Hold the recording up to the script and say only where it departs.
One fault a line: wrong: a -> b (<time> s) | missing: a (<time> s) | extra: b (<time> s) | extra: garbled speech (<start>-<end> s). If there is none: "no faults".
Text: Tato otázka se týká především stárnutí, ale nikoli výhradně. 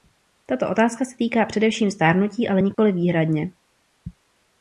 no faults